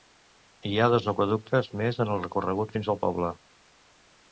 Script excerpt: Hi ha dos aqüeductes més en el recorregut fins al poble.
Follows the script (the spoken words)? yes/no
yes